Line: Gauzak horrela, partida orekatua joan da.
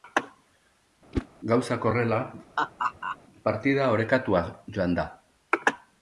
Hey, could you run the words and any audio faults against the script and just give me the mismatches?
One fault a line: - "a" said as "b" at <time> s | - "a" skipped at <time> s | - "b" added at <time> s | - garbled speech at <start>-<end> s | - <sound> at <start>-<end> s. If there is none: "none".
- whoosh at 1.1-1.3 s
- laugh at 2.6-3.2 s